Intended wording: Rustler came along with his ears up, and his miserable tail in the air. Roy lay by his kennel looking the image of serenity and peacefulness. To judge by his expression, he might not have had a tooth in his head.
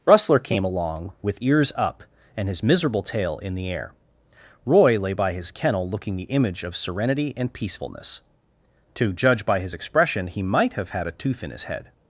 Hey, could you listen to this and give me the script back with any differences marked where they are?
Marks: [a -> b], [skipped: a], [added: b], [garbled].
Rustler came along with [skipped: his] ears up, and his miserable tail in the air. Roy lay by his kennel looking the image of serenity and peacefulness. To judge by his expression, he might [skipped: not] have had a tooth in his head.